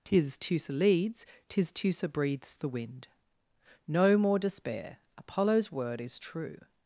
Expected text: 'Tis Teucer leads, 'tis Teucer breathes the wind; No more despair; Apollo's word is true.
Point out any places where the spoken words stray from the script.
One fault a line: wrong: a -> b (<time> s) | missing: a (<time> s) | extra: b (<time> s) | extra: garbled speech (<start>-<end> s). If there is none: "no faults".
no faults